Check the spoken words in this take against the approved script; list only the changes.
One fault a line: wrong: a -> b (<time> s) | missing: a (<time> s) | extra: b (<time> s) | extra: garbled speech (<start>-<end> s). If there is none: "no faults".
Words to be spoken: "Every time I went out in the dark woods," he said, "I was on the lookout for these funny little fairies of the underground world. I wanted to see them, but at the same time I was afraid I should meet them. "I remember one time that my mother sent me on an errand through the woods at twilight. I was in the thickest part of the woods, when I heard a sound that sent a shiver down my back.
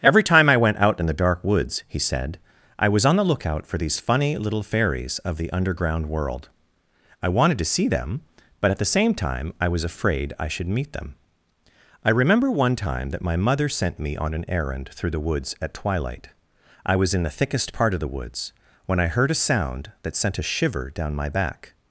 no faults